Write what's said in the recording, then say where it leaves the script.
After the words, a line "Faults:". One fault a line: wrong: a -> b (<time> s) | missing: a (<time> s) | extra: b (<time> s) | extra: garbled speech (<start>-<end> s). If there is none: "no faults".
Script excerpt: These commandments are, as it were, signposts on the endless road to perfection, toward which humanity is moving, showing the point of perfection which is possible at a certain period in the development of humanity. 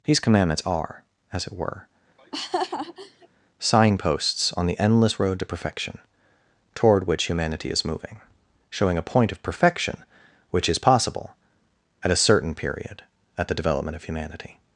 These commandments are, as it were, signposts on the endless road to perfection, toward which humanity is moving, showing a point of perfection which is possible at a certain period at the development of humanity.
Faults:
wrong: the -> a (9.0 s)
wrong: in -> at (13.4 s)